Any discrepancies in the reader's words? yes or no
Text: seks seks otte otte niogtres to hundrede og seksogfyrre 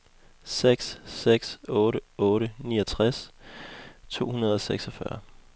no